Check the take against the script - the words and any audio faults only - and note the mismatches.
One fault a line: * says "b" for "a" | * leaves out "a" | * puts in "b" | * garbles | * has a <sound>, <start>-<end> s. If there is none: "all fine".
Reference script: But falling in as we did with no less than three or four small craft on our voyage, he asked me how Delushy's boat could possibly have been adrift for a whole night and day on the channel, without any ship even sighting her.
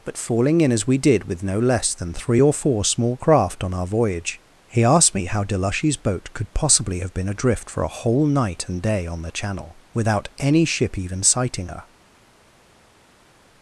all fine